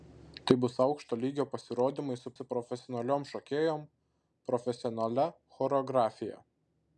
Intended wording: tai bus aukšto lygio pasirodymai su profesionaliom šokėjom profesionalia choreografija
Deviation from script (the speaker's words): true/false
true